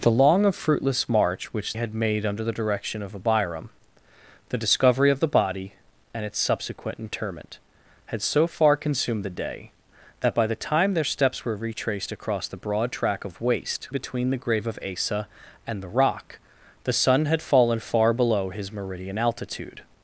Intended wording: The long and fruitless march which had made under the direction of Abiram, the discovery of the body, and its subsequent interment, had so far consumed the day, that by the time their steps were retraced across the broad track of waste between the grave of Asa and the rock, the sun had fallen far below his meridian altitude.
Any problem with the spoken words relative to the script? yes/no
no